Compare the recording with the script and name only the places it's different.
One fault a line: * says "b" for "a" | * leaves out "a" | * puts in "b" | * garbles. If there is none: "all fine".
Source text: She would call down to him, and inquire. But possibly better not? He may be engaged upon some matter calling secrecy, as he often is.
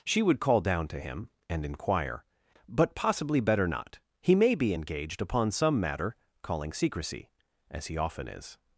all fine